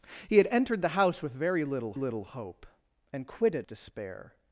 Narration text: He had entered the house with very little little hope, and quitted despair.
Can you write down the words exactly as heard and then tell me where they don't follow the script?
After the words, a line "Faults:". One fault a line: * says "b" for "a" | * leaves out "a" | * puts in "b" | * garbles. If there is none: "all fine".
He had entered the house with very little little hope, and quitted despair.
Faults:
all fine